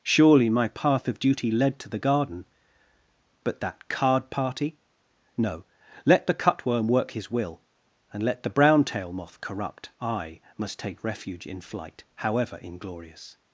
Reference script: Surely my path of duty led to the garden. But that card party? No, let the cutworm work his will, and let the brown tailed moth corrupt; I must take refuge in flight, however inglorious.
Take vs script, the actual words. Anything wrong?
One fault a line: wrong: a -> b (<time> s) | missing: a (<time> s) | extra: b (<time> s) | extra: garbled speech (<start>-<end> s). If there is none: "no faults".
wrong: tailed -> tail (8.8 s)